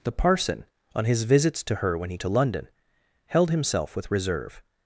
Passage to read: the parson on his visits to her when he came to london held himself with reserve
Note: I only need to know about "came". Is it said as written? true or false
false